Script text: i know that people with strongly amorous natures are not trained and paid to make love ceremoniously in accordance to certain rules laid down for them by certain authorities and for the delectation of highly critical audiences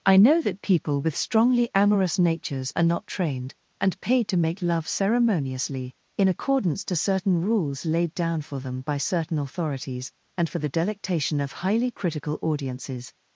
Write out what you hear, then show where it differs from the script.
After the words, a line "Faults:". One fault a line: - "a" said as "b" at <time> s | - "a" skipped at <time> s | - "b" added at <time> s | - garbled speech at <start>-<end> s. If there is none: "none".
i know that people with strongly amorous natures are not trained and paid to make love ceremoniously in accordance to certain rules laid down for them by certain authorities and for the delectation of highly critical audiences
Faults:
none